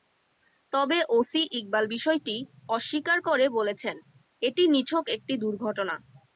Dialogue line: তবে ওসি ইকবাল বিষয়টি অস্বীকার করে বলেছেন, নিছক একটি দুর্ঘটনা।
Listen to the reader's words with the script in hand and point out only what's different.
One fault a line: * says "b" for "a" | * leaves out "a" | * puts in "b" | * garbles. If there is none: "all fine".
* puts in "এটি"